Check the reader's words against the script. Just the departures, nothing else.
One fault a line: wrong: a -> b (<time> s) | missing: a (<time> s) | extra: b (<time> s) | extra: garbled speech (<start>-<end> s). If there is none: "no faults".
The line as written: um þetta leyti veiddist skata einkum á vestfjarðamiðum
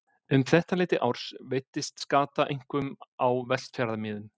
extra: árs (1.1 s)